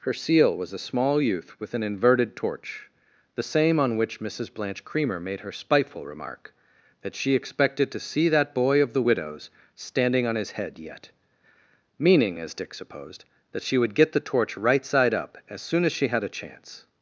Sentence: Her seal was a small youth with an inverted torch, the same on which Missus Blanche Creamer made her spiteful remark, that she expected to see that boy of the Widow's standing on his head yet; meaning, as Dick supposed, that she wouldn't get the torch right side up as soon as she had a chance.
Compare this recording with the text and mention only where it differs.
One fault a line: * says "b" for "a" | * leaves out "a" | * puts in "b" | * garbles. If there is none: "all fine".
* says "would" for "wouldn't"